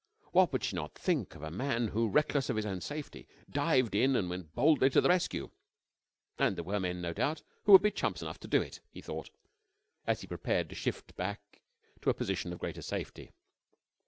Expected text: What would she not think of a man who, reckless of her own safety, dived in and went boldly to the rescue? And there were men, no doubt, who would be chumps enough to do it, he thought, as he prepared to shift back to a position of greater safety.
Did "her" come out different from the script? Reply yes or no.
yes